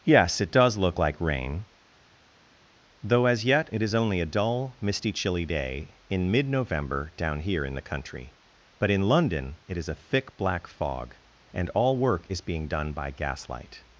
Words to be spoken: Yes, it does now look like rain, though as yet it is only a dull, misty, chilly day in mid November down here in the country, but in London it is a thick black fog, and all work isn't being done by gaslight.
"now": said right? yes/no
no